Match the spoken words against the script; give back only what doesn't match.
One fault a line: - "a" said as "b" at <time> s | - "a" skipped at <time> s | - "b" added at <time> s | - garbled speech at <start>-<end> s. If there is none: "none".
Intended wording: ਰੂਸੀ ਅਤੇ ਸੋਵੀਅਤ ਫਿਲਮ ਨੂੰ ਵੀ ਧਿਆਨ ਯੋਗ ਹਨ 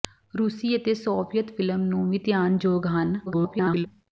- garbled speech at 3.3-3.9 s